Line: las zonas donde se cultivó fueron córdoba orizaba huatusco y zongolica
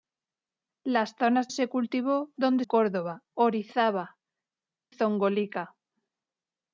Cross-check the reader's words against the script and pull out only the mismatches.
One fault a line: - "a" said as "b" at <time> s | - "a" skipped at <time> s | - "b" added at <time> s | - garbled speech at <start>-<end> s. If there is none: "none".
- "donde" skipped at 1.5 s
- "fueron" said as "donde" at 2.4 s
- "huatusco y" skipped at 4.2 s